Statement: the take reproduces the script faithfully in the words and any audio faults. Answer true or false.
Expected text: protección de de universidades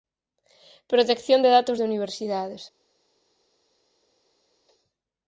false